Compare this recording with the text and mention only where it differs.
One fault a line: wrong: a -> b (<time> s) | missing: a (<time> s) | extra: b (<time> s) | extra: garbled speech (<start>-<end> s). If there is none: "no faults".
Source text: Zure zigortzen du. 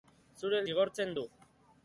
no faults